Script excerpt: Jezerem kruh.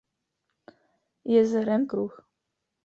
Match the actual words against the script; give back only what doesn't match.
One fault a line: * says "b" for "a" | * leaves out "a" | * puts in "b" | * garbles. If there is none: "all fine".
all fine